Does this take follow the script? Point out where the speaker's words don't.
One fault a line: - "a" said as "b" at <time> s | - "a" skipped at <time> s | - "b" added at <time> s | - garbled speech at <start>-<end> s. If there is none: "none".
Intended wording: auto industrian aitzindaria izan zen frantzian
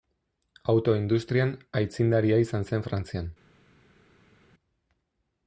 none